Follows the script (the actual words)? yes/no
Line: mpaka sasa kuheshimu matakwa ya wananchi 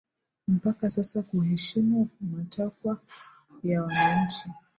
yes